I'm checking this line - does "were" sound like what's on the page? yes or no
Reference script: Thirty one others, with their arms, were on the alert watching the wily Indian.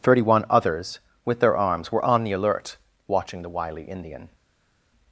yes